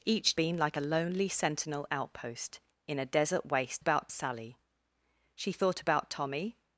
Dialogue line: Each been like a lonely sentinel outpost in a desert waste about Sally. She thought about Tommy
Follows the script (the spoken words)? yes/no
yes